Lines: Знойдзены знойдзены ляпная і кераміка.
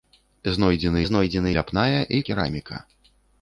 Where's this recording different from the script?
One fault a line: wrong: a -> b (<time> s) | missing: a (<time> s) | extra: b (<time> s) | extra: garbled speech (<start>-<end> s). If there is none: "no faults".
no faults